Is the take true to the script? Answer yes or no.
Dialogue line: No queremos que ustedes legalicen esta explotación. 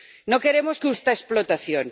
no